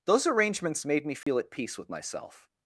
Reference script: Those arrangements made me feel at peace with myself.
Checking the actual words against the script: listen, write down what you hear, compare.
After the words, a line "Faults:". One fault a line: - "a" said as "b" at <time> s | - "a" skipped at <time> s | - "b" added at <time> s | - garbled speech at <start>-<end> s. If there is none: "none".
Those arrangements made me feel at peace with myself.
Faults:
none